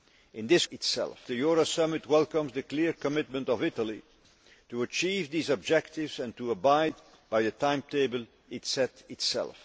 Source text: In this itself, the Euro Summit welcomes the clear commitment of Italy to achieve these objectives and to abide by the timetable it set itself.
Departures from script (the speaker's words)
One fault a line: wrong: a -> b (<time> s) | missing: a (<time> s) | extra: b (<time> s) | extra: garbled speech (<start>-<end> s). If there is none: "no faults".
no faults